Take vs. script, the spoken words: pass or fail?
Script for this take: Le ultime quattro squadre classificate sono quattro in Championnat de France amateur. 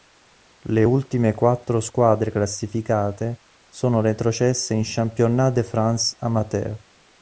fail